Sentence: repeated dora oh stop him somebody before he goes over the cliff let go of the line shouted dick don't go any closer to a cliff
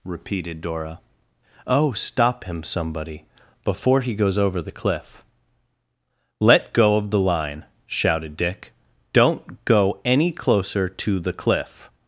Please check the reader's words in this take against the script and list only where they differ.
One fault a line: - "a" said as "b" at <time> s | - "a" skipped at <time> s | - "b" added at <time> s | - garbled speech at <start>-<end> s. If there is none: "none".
- "a" said as "the" at 11.2 s